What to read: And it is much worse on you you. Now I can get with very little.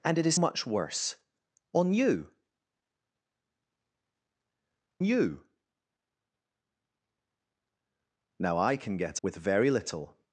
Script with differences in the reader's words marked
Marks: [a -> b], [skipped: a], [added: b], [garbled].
And it is much worse on you you. Now I can get with very little.